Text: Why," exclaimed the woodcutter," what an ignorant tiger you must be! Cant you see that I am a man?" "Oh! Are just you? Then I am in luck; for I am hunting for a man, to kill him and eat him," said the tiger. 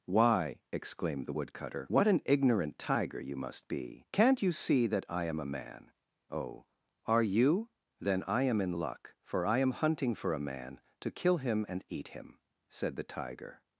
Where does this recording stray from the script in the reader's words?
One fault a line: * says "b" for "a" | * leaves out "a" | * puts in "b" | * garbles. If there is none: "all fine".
* leaves out "just"